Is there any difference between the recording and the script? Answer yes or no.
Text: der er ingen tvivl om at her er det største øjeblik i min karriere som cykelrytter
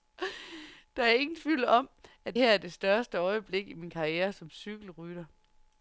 no